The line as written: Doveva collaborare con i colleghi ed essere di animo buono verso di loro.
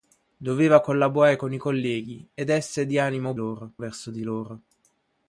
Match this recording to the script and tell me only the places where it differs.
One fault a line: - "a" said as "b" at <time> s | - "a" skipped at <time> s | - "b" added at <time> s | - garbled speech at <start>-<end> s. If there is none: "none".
- "buono" said as "loro" at 3.3 s